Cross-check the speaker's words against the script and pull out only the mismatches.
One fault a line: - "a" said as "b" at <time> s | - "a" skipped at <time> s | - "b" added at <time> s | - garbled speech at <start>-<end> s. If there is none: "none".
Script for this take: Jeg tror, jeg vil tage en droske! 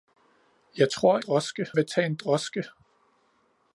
- "jeg" said as "droske" at 1.2 s